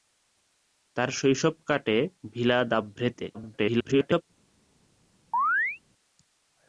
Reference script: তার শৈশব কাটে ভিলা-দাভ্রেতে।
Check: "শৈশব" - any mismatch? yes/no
no